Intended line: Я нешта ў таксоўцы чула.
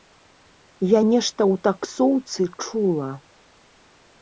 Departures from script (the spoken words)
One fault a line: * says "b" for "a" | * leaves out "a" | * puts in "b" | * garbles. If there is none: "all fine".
all fine